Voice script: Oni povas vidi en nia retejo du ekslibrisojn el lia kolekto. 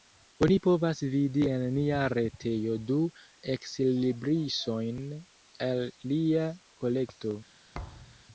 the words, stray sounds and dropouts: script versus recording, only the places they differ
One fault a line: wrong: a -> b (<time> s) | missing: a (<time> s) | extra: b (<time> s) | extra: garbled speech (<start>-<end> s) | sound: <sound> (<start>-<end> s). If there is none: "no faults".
sound: thud (7.7-8.2 s)